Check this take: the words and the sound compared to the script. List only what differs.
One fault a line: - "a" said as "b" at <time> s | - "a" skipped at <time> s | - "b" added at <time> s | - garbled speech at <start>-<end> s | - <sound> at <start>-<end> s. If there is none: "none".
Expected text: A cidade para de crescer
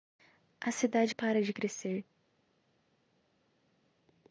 none